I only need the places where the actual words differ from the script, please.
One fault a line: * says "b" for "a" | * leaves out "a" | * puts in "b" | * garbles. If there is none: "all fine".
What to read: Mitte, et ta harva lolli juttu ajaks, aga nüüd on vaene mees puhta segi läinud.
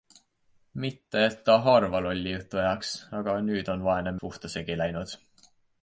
* leaves out "mees"